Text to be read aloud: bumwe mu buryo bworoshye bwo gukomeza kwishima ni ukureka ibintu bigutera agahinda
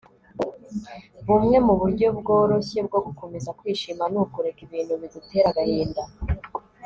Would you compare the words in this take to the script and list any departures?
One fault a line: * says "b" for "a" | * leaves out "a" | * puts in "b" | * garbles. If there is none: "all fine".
all fine